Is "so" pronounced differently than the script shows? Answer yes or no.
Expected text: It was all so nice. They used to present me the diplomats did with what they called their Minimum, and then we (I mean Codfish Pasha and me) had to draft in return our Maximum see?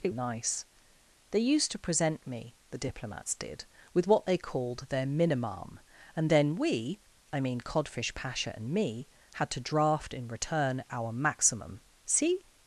yes